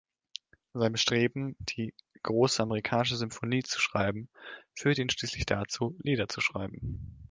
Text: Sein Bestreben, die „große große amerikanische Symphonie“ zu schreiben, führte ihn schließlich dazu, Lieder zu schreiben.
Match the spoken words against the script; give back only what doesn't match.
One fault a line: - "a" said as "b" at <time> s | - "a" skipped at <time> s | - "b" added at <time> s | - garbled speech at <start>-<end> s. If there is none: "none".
- "große" skipped at 2.6 s